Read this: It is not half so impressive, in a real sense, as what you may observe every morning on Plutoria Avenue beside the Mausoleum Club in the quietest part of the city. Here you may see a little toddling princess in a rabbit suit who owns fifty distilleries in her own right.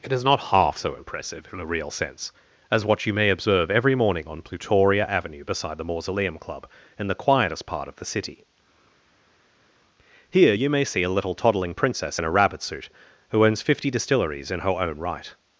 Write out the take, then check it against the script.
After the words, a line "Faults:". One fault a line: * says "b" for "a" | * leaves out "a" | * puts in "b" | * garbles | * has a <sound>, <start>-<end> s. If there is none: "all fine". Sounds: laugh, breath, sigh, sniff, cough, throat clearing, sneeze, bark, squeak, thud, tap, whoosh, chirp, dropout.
It is not half so impressive, in a real sense, as what you may observe every morning on Plutoria Avenue beside the Mausoleum Club in the quietest part of the city. Here you may see a little toddling princess in a rabbit suit who owns fifty distilleries in her own right.
Faults:
all fine